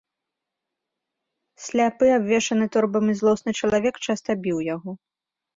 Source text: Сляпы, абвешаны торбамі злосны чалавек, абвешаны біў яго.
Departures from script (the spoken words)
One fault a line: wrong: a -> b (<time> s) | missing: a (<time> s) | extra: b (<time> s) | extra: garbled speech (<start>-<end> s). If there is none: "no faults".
wrong: абвешаны -> часта (4.1 s)